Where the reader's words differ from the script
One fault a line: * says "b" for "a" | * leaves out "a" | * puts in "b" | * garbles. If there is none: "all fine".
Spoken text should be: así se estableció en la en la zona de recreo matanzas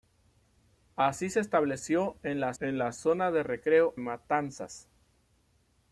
all fine